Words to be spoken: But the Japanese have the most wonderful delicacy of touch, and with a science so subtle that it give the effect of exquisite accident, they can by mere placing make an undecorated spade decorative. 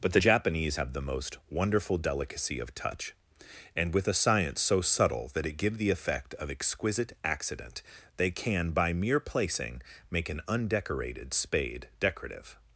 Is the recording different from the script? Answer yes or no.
no